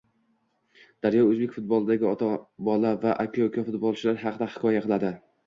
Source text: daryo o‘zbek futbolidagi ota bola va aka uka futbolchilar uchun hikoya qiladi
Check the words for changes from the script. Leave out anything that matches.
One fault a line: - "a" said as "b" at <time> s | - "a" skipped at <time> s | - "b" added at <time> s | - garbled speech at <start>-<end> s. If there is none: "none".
- "uchun" said as "haqida" at 4.3 s